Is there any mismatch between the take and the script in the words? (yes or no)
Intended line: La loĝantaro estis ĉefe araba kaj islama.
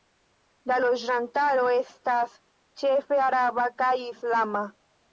yes